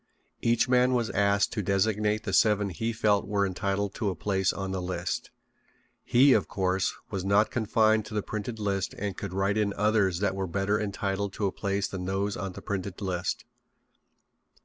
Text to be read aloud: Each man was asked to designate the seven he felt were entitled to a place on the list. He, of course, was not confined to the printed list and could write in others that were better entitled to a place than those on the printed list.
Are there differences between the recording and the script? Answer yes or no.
no